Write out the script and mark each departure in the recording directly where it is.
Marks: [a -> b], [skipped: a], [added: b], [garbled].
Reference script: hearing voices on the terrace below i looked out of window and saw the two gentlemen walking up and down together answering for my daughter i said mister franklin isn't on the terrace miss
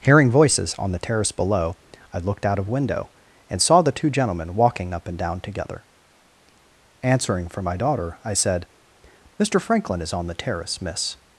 hearing voices on the terrace below i looked out of window and saw the two gentlemen walking up and down together answering for my daughter i said mister franklin [isn't -> is] on the terrace miss